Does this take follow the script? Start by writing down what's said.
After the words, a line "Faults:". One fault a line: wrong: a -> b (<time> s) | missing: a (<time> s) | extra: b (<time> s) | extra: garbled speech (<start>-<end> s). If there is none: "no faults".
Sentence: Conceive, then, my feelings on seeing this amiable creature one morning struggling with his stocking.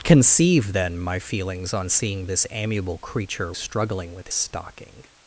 Conceive, then, my feelings on seeing this amiable creature struggling with stocking.
Faults:
missing: one morning (3.5 s)
missing: his (4.3 s)